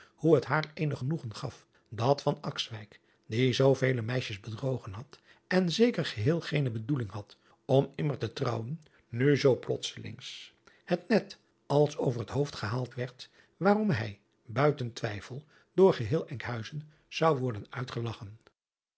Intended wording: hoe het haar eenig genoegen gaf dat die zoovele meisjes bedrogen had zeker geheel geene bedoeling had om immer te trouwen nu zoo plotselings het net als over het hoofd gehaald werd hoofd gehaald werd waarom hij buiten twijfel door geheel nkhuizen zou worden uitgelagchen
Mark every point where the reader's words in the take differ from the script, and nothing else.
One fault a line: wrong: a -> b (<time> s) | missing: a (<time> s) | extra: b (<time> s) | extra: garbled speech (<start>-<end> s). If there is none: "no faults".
extra: en (5.5 s)
missing: hoofd gehaald werd (13.3 s)